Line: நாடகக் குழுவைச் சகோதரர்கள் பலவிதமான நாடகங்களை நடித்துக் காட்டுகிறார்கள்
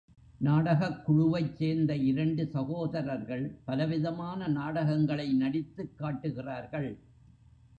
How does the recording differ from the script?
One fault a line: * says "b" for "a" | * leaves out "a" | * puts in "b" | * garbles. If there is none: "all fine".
* puts in "சேர்ந்த இரண்டு"